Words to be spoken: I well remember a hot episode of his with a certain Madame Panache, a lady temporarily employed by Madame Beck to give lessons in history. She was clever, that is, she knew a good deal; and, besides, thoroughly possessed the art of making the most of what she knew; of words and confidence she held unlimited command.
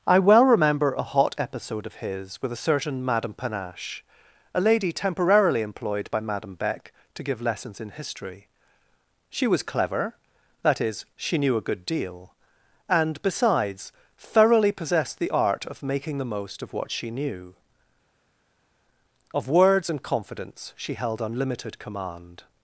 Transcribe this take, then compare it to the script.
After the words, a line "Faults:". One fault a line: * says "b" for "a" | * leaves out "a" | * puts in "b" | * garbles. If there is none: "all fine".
I well remember a hot episode of his with a certain Madame Panache, a lady temporarily employed by Madame Beck to give lessons in history. She was clever, that is, she knew a good deal; and, besides, thoroughly possessed the art of making the most of what she knew; of words and confidence she held unlimited command.
Faults:
all fine